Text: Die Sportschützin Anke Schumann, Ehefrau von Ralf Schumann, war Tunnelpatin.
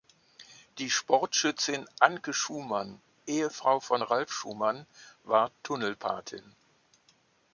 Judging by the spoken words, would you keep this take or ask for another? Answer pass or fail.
pass